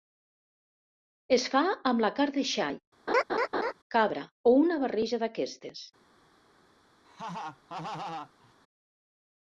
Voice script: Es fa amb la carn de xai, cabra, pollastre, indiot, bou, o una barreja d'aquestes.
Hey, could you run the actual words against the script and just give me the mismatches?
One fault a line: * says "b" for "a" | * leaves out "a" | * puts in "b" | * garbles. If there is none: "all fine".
* leaves out "pollastre indiot bou"